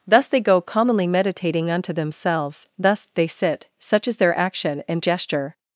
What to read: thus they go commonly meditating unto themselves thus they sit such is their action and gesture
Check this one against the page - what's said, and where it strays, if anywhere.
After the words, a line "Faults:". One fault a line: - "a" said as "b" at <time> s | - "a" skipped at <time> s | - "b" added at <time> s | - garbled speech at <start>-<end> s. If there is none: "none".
thus they go commonly meditating unto themselves thus they sit such is their action and gesture
Faults:
none